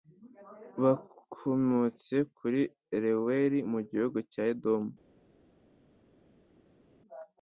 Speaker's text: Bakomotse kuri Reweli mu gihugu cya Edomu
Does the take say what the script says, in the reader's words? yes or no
yes